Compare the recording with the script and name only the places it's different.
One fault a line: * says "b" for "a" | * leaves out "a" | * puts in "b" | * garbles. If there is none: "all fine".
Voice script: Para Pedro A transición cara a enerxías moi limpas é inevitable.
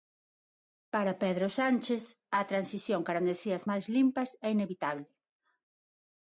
* puts in "Sánchez"
* says "máis" for "moi"